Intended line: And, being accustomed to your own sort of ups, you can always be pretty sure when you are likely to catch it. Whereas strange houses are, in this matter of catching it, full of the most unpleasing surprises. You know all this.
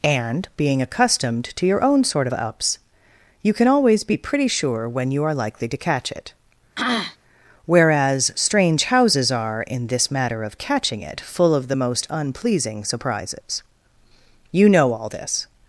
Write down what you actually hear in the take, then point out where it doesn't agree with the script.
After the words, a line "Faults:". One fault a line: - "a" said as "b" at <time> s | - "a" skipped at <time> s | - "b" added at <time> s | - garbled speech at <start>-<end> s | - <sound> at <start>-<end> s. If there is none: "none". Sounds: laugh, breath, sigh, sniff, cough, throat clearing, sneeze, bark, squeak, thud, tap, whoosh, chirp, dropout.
And, being accustomed to your own sort of ups, you can always be pretty sure when you are likely to catch it. Whereas strange houses are, in this matter of catching it, full of the most unpleasing surprises. You know all this.
Faults:
- throat clearing at 6.8-7.2 s